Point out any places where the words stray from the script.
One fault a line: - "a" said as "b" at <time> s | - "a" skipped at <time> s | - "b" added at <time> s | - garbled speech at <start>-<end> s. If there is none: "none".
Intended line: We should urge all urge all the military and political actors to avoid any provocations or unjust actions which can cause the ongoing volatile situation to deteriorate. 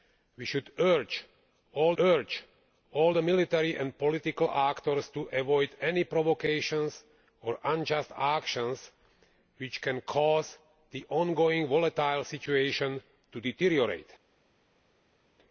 none